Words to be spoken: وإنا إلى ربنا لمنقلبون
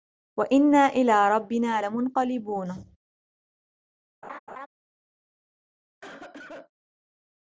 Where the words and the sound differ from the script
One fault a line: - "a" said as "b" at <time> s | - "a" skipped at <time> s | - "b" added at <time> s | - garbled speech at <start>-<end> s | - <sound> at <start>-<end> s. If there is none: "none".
- laugh at 4.2-4.7 s
- cough at 6.0-6.7 s